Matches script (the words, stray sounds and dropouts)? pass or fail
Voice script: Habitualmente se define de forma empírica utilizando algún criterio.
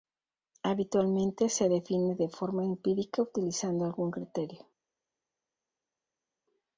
pass